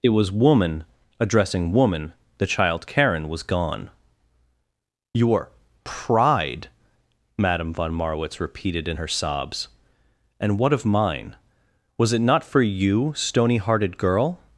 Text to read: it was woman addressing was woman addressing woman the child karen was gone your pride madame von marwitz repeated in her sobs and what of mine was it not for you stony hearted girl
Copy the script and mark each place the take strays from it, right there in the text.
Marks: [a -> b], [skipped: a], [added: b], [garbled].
it was woman addressing [skipped: was woman addressing] woman the child karen was gone your pride madame von marwitz repeated in her sobs and what of mine was it not for you stony hearted girl